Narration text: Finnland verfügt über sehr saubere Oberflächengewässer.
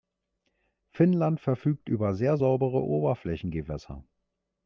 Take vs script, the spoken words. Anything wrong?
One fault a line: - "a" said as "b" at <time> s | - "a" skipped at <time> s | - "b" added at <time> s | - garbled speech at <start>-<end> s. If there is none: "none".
none